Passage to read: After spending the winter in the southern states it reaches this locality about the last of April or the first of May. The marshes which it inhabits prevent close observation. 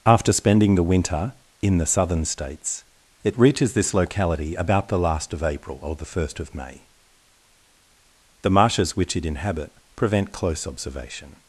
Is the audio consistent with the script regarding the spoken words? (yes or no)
no